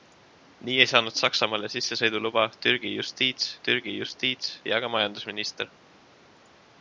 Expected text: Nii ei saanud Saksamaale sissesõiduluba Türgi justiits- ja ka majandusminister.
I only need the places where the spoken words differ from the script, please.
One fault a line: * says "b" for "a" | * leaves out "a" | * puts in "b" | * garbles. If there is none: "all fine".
* puts in "Türgi justiits"